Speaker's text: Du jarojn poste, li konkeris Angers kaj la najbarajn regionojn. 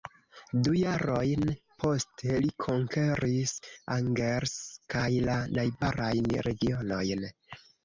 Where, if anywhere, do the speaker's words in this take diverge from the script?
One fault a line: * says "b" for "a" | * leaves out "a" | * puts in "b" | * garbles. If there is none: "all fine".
all fine